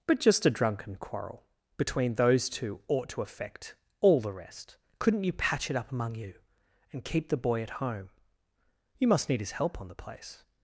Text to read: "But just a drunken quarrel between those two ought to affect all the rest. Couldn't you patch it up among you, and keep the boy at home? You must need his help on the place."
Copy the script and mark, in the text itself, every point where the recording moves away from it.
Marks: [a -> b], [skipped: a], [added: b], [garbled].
"But just a drunken quarrel between those two ought to affect all the rest. Couldn't you patch it up among you, and keep the boy at home? You must need his help on the place."